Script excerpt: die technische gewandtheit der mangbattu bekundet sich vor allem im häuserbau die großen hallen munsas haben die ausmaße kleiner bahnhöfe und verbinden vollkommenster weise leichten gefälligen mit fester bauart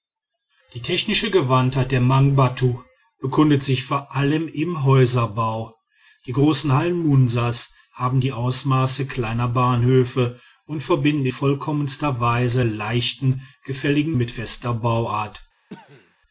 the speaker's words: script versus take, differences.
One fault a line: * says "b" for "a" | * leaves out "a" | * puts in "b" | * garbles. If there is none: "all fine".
all fine